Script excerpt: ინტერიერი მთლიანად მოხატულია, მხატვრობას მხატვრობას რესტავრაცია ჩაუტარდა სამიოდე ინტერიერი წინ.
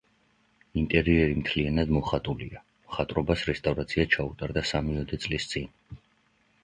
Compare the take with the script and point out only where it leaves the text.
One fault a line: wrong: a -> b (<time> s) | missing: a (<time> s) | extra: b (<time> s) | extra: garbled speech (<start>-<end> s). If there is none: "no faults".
missing: მხატვრობას (3.5 s)
wrong: ინტერიერი -> წლის (5.3 s)